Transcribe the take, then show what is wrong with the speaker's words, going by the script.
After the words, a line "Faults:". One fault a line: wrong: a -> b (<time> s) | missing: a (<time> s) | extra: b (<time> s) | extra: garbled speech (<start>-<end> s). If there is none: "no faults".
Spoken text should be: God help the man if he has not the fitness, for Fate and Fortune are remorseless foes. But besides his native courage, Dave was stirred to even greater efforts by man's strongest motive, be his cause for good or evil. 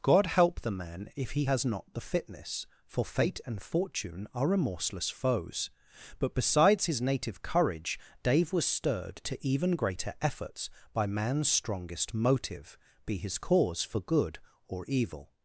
God help the man if he has not the fitness, for Fate and Fortune are remorseless foes. But besides his native courage, Dave was stirred to even greater efforts by man's strongest motive, be his cause for good or evil.
Faults:
no faults